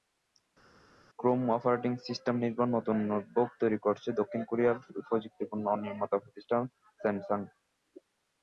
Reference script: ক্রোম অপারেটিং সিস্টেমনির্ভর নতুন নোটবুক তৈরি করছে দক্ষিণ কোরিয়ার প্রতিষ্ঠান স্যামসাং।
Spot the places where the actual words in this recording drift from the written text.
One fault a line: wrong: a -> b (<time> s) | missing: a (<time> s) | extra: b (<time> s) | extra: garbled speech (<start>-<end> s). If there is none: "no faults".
extra: প্রযুক্তিপণ্য নির্মাতা (5.1 s)